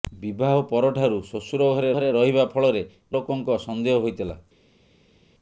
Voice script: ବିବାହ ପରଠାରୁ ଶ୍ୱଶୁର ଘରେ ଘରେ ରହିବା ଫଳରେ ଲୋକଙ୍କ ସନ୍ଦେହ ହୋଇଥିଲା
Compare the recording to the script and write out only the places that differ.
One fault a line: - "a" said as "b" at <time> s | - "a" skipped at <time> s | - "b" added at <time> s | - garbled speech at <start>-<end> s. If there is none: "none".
none